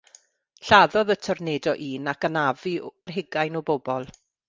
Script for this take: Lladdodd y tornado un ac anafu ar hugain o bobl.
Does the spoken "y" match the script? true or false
true